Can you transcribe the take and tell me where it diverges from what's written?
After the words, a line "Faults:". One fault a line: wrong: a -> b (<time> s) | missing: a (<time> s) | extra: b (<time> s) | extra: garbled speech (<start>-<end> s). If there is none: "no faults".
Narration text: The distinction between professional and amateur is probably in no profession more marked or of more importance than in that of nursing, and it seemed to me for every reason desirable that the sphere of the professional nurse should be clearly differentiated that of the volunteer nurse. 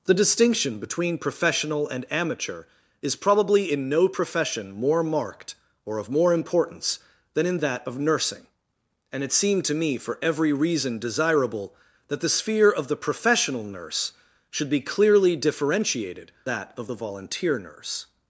The distinction between professional and amateur is probably in no profession more marked or of more importance than in that of nursing, and it seemed to me for every reason desirable that the sphere of the professional nurse should be clearly differentiated that of the volunteer nurse.
Faults:
no faults